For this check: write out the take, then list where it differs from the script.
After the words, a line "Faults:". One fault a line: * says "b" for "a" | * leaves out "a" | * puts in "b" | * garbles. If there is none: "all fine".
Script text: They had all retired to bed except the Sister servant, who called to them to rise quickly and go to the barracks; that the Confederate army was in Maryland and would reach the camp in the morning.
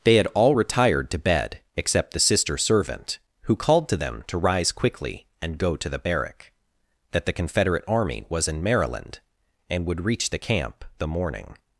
They had all retired to bed except the Sister servant, who called to them to rise quickly and go to the barrack; that the Confederate army was in Maryland and would reach the camp the morning.
Faults:
* says "barrack" for "barracks"
* leaves out "in"